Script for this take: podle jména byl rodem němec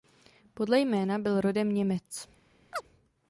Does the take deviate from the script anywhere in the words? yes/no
no